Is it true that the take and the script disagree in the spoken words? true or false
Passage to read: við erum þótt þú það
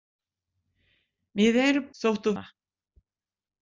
false